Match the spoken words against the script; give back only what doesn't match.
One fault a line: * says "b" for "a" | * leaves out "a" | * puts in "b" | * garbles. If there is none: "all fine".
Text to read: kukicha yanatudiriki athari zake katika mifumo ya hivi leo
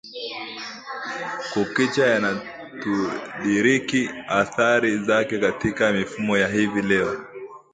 all fine